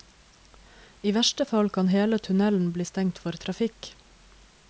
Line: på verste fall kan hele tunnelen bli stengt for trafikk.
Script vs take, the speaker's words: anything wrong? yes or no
yes